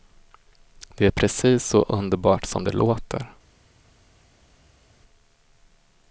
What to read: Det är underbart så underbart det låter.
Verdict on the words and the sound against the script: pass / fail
fail